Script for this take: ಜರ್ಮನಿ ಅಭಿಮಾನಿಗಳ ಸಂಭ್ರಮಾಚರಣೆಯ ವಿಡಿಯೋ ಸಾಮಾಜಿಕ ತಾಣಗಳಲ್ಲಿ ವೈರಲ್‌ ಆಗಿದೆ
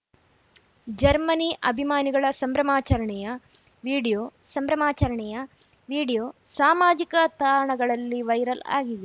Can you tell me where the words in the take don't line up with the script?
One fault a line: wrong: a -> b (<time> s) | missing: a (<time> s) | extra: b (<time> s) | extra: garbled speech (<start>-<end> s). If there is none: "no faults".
extra: ಸಂಭ್ರಮಾಚರಣೆಯ ವಿಡಿಯೋ (4.5 s)